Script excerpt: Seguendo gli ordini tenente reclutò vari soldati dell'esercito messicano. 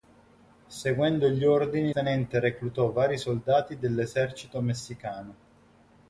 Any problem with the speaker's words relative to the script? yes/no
no